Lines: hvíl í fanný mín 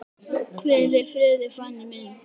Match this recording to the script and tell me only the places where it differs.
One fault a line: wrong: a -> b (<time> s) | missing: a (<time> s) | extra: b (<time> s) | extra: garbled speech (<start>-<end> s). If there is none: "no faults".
extra: friði (1.1 s)